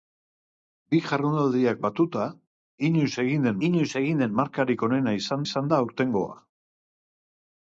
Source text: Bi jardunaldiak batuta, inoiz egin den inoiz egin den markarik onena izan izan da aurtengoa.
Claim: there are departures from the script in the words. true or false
false